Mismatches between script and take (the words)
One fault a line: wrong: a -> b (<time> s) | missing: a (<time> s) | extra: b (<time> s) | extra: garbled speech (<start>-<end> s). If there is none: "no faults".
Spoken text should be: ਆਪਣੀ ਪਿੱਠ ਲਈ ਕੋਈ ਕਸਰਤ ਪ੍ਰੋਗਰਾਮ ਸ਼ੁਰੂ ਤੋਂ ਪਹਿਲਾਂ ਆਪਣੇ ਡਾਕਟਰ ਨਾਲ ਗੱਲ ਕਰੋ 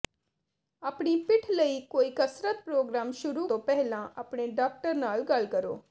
no faults